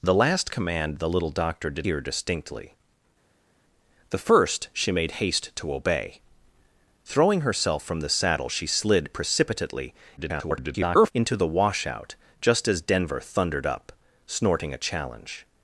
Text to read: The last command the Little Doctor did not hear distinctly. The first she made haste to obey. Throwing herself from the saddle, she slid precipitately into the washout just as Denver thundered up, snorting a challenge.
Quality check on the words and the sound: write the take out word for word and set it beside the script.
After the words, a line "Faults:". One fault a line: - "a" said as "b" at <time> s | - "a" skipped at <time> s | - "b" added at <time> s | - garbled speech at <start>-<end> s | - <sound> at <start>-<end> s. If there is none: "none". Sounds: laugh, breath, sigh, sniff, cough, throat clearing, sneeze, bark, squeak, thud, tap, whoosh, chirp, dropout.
The last command the Little Doctor did hear distinctly. The first she made haste to obey. Throwing herself from the saddle, she slid precipitately [garbled] into the washout just as Denver thundered up, snorting a challenge.
Faults:
- "not" skipped at 1.9 s
- garbled speech at 10.2-11.1 s